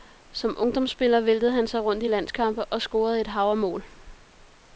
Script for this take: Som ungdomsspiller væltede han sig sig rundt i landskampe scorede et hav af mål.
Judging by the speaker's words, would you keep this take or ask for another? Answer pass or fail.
fail